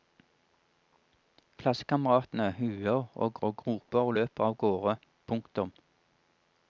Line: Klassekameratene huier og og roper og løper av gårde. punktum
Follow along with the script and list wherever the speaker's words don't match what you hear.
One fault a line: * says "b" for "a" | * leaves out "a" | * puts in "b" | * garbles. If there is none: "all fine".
all fine